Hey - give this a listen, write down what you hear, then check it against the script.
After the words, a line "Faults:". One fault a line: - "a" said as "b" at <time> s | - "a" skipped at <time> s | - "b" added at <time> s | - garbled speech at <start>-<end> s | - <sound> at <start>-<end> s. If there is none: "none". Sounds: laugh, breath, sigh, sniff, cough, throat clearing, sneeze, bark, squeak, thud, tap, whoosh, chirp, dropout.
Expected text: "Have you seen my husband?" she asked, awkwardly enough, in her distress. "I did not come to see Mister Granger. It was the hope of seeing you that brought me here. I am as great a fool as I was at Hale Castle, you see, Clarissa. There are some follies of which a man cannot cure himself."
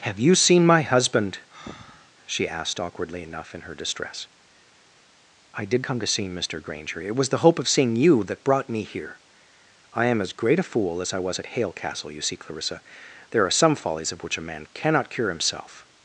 "Have you seen my husband?" she asked, awkwardly enough, in her distress. "I did come to see Mister Granger. It was the hope of seeing you that brought me here. I am as great a fool as I was at Hale Castle, you see, Clarissa. There are some follies of which a man cannot cure himself."
Faults:
- breath at 1.5-2.1 s
- "not" skipped at 5.8 s